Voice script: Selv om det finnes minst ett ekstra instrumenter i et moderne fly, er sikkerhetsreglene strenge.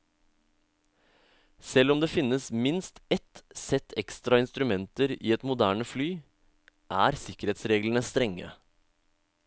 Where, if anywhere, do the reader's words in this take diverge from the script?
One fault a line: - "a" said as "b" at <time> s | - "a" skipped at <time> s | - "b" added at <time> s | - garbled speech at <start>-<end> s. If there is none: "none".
- "sett" added at 3.5 s